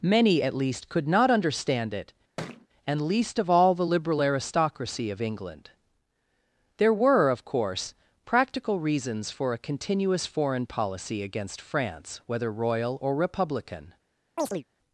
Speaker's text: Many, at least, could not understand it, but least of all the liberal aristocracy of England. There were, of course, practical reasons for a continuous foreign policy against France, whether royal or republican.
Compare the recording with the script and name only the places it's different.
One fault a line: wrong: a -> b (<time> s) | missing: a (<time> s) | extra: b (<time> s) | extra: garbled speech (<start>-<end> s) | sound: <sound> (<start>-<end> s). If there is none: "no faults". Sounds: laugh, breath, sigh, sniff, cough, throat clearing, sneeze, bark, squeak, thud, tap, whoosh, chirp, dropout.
sound: thud (2.4-2.7 s)
wrong: but -> and (2.9 s)
sound: chirp (14.4-14.6 s)